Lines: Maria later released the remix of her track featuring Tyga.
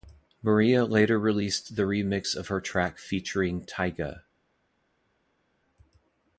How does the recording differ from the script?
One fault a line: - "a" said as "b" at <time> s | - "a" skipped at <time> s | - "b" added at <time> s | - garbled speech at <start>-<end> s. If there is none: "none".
none